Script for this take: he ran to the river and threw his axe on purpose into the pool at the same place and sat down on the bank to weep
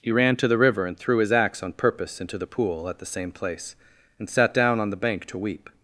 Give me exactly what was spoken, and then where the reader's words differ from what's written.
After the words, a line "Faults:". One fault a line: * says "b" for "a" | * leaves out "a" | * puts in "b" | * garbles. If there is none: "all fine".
he ran to the river and threw his axe on purpose into the pool at the same place and sat down on the bank to weep
Faults:
all fine